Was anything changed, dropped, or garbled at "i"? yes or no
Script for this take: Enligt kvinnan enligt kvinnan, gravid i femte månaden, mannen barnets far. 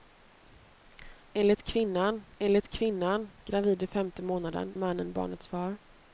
no